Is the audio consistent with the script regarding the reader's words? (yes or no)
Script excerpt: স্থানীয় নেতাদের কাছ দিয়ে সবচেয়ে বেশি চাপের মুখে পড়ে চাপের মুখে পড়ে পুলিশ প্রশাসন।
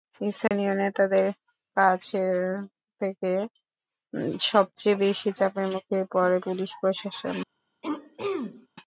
no